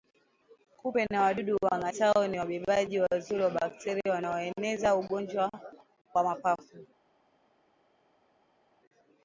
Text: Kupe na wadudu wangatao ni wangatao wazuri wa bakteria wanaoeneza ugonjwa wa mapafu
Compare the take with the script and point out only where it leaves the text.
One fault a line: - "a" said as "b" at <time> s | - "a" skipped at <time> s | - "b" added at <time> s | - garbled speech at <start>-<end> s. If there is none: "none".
- "wangatao" said as "wabebaji" at 2.4 s